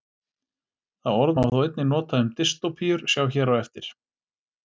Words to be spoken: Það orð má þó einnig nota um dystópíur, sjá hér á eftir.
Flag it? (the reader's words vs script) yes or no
no